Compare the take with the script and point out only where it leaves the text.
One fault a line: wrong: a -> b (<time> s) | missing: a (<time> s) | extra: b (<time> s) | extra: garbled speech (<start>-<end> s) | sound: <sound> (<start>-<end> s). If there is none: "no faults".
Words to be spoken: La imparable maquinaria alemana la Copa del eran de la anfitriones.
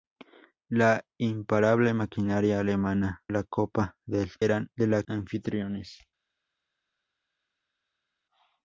no faults